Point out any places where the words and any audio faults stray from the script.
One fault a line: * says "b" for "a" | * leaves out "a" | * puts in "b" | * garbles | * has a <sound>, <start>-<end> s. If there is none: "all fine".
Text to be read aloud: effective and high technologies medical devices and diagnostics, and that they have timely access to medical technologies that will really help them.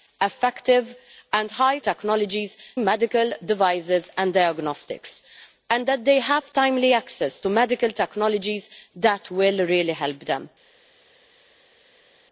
all fine